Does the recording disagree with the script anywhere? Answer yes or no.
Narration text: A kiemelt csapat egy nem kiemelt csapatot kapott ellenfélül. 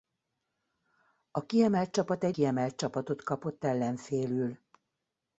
yes